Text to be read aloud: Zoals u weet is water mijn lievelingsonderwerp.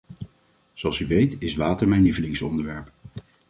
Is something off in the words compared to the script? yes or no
no